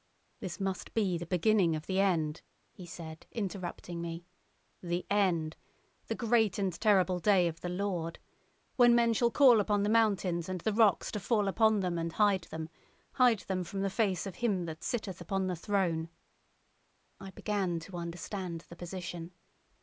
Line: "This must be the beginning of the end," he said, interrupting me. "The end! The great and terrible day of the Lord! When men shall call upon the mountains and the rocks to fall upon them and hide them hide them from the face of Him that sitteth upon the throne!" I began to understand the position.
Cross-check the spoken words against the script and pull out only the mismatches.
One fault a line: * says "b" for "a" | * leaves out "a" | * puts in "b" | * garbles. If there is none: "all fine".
all fine